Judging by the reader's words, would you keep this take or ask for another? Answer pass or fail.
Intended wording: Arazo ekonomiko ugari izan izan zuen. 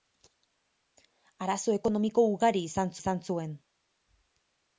pass